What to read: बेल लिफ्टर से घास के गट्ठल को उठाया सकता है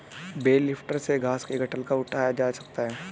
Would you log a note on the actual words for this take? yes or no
yes